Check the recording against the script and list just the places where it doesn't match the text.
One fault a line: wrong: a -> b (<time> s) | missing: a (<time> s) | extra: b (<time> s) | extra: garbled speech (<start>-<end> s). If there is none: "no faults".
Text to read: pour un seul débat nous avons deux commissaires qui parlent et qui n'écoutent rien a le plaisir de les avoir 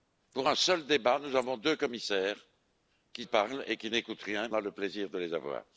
no faults